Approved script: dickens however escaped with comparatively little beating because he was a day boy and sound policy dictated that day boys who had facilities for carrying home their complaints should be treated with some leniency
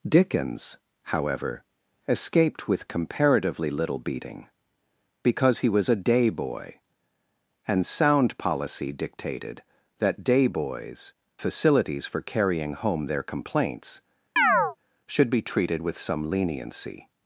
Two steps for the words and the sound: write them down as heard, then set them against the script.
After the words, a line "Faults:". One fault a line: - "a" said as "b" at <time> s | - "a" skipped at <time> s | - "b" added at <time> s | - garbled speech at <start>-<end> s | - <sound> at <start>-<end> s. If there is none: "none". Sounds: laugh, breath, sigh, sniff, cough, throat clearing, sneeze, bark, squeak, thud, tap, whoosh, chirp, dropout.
dickens however escaped with comparatively little beating because he was a day boy and sound policy dictated that day boys facilities for carrying home their complaints should be treated with some leniency
Faults:
- "who had" skipped at 11.1 s
- chirp at 14.4-14.8 s